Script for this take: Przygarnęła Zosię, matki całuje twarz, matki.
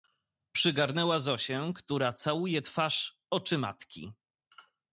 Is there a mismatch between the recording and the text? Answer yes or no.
yes